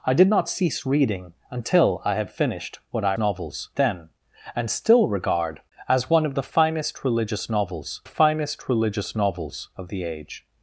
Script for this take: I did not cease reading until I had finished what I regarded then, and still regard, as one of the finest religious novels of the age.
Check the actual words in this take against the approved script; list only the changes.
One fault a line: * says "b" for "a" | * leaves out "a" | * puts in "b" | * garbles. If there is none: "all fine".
* says "novels" for "regarded"
* puts in "finest religious novels"